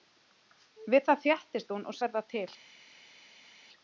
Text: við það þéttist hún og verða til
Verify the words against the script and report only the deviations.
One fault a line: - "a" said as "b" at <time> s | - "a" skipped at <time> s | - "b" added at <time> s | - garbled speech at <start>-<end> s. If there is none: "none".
none